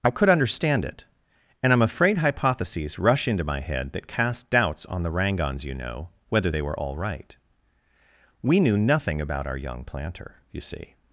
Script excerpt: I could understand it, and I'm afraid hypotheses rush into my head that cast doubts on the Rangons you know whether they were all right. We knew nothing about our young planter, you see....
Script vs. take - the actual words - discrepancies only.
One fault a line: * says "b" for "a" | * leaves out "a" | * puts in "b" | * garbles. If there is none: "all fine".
all fine